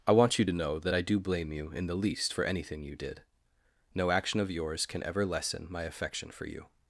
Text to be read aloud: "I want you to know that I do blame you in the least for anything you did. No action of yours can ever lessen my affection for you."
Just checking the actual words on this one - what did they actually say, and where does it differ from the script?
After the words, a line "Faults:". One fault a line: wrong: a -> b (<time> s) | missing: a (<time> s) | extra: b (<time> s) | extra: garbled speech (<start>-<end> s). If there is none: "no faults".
"I want you to know that I do blame you in the least for anything you did. No action of yours can ever lessen my affection for you."
Faults:
no faults